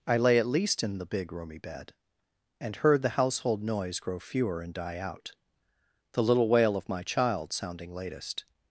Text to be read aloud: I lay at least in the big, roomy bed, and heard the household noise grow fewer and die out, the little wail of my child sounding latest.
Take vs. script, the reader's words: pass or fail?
pass